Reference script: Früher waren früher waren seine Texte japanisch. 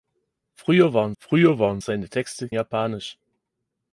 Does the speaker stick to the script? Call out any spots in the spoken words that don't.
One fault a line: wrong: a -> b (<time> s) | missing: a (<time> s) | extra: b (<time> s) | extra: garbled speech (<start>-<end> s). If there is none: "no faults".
no faults